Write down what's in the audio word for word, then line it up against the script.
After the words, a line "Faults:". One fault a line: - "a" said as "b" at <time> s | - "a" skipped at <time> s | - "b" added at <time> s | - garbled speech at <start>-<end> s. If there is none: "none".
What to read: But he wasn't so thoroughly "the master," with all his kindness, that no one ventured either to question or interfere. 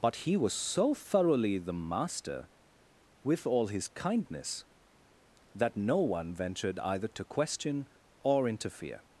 But he was so thoroughly "the master," with all his kindness, that no one ventured either to question or interfere.
Faults:
- "wasn't" said as "was" at 0.3 s